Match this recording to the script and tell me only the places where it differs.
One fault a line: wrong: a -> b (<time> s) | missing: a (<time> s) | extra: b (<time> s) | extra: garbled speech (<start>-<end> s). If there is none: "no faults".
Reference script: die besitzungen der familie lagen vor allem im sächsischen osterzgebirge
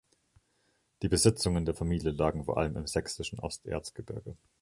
no faults